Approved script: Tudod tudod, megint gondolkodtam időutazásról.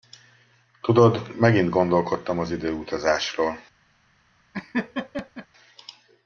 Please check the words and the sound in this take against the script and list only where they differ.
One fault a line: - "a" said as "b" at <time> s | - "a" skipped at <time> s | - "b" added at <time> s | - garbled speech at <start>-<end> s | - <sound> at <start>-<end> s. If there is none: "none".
- "tudod" skipped at 1.4 s
- "az" added at 2.4 s
- laugh at 4.5-5.5 s